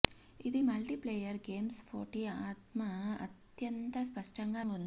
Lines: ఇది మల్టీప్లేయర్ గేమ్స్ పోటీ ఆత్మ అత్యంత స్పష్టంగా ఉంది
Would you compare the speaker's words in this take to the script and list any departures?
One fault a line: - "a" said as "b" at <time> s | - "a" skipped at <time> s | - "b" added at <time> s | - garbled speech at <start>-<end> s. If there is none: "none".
none